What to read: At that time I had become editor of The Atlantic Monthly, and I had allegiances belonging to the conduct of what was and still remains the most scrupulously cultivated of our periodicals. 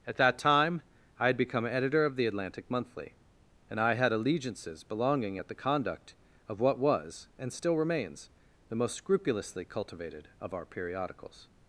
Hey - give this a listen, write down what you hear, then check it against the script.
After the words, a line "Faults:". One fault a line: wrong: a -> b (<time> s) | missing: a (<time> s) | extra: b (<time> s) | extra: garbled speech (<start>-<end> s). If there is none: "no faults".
At that time I had become editor of The Atlantic Monthly, and I had allegiances belonging at the conduct of what was and still remains the most scrupulously cultivated of our periodicals.
Faults:
wrong: to -> at (5.4 s)